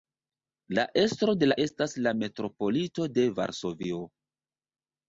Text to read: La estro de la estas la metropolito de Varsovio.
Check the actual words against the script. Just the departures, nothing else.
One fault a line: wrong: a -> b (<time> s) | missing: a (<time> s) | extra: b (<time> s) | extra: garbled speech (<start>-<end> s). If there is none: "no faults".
no faults